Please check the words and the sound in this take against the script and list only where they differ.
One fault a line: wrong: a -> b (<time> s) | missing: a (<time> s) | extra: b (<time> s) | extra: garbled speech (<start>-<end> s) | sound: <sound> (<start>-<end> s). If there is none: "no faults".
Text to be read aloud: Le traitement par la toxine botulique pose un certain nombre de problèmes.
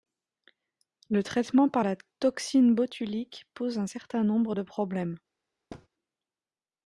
sound: thud (5.7-5.9 s)